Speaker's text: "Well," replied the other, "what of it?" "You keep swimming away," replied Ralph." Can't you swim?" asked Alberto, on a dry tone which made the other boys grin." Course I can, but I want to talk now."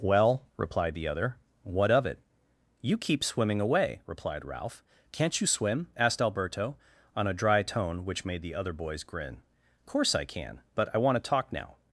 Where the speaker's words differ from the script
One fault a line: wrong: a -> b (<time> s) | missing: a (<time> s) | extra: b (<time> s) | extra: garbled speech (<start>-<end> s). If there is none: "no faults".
no faults